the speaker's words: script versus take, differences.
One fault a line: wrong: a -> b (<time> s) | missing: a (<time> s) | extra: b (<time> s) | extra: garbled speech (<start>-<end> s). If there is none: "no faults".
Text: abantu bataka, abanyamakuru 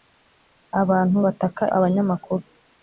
no faults